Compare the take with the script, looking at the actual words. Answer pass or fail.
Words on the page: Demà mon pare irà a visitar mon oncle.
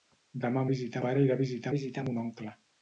fail